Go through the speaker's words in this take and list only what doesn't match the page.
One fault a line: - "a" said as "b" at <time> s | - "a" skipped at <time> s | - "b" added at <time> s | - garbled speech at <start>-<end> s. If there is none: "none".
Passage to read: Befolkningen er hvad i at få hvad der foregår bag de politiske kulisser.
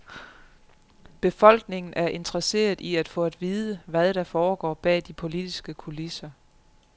- "hvad" said as "interesseret" at 2.1 s
- "at vide" added at 3.2 s